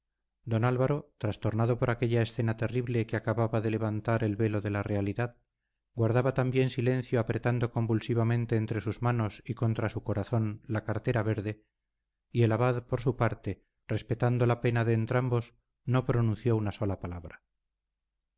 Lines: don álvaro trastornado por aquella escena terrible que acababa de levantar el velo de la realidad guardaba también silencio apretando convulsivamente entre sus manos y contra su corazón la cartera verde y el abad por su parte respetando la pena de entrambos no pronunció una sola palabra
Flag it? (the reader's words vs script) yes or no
no